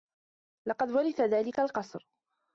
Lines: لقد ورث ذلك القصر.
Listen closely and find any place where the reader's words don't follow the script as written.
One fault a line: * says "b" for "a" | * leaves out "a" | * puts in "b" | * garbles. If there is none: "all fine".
all fine